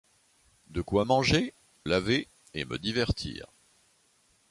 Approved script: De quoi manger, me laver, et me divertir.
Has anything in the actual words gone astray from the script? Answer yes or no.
yes